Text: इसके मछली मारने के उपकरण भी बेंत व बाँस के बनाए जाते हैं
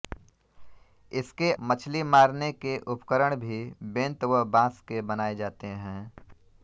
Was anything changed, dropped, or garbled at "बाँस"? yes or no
no